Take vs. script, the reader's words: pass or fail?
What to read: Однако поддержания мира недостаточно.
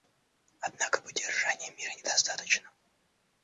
pass